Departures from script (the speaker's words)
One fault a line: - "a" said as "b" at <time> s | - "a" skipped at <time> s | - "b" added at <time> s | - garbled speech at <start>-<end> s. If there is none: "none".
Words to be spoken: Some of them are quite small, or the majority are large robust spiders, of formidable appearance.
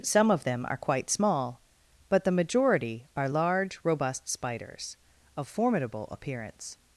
- "or" said as "but" at 2.1 s